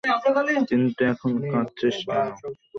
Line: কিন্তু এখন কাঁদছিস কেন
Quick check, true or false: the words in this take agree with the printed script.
true